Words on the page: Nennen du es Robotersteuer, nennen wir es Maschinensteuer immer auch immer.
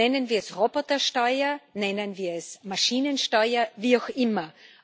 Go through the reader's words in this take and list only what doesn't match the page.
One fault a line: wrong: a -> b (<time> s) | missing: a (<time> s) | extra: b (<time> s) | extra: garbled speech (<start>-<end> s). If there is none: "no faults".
wrong: du -> wir (0.3 s)
wrong: immer -> wie (3.8 s)